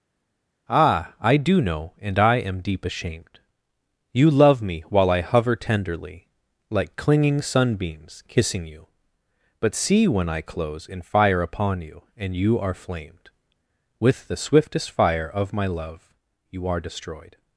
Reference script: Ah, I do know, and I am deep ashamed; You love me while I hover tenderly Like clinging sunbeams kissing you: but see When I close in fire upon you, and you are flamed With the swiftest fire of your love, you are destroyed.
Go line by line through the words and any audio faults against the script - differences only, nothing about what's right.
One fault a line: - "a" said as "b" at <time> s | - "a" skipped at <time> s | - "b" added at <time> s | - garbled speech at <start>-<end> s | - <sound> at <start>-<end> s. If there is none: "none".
- "your" said as "my" at 15.5 s